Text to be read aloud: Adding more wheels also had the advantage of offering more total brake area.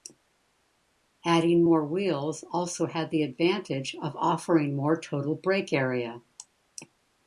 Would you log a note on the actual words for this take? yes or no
no